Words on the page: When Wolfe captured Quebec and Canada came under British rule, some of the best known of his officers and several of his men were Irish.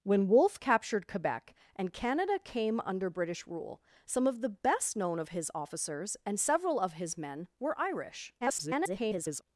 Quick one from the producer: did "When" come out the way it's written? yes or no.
yes